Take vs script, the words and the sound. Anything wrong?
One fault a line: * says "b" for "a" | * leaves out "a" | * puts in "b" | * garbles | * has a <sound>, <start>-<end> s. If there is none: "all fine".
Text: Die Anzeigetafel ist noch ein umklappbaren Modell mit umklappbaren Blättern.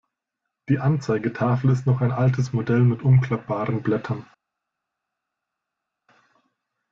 * says "altes" for "umklappbaren"